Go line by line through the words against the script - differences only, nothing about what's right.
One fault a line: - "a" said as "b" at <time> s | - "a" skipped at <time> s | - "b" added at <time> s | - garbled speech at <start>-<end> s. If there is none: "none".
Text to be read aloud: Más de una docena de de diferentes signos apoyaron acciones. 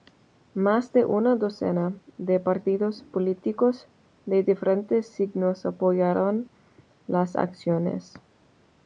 - "partidos políticos" added at 2.4 s
- "las" added at 7.0 s